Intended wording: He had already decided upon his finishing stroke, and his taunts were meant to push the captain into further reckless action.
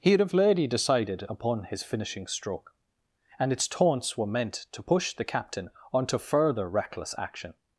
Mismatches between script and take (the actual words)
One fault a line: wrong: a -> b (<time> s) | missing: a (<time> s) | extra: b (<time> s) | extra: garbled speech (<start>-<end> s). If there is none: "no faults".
wrong: his -> its (3.5 s)
wrong: into -> onto (5.9 s)